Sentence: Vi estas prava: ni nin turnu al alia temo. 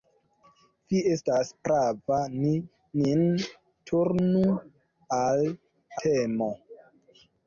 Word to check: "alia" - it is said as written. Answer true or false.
false